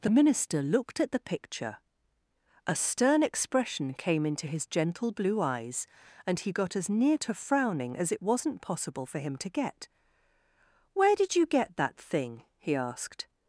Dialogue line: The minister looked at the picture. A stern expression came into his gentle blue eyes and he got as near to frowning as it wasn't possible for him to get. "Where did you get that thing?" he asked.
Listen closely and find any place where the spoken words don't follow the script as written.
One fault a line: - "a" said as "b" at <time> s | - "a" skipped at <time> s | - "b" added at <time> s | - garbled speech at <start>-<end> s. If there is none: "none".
none